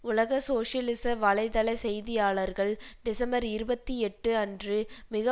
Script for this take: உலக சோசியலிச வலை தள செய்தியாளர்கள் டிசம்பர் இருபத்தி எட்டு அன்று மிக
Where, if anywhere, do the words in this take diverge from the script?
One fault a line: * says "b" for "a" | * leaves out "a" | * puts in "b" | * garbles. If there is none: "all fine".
all fine